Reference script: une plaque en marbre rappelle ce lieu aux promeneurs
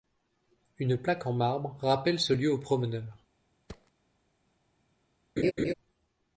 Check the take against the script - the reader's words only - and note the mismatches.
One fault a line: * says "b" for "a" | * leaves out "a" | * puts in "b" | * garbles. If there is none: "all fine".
all fine